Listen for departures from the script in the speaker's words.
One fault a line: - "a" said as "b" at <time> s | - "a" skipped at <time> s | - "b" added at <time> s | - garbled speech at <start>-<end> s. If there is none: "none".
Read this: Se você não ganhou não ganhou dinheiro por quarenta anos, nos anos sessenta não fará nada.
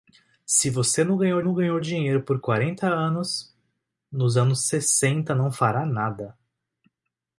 none